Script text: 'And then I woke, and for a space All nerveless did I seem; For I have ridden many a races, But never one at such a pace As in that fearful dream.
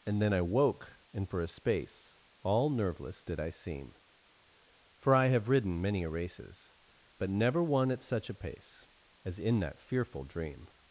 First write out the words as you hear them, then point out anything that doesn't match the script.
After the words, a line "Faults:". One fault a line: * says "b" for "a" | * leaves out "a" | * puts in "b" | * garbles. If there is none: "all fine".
'And then I woke, and for a space All nerveless did I seem; For I have ridden many a races, But never one at such a pace As in that fearful dream.
Faults:
all fine